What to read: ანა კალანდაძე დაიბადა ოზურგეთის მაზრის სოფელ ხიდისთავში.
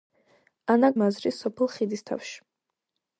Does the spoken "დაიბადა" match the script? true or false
false